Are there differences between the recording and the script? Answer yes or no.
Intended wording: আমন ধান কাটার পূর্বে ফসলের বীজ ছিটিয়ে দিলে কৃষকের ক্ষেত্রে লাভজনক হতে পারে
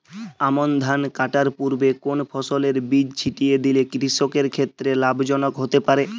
yes